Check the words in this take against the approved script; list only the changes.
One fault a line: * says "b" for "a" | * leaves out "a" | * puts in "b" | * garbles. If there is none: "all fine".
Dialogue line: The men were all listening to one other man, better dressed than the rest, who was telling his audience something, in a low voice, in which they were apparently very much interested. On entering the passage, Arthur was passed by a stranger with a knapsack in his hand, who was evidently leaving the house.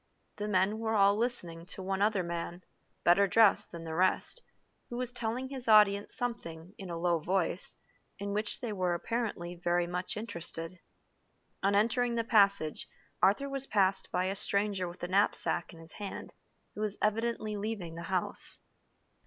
all fine